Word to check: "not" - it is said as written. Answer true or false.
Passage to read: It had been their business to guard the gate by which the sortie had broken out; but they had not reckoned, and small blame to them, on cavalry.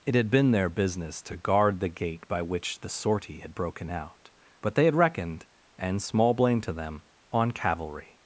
false